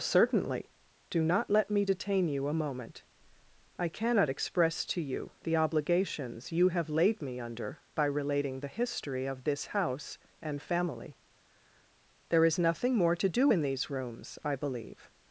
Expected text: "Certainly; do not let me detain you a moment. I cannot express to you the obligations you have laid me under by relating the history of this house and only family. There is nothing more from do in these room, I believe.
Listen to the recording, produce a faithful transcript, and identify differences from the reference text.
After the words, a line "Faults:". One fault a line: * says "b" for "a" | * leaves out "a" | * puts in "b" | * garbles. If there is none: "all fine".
"Certainly; do not let me detain you a moment. I cannot express to you the obligations you have laid me under by relating the history of this house and family. There is nothing more to do in these rooms, I believe.
Faults:
* leaves out "only"
* says "to" for "from"
* says "rooms" for "room"